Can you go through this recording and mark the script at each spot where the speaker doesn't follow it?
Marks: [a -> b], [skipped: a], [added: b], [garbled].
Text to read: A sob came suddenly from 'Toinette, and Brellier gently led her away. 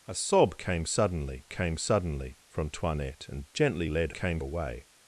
A sob came suddenly [added: came suddenly] from 'Toinette, and [skipped: Brellier] gently led [her -> came] away.